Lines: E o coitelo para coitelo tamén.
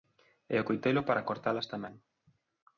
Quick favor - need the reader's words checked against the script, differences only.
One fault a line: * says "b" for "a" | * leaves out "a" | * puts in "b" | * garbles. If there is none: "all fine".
* says "cortalas" for "coitelo"